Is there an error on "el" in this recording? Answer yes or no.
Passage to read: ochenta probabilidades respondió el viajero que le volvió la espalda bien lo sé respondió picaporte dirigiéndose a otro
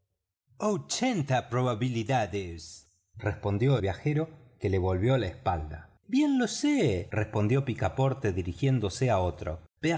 yes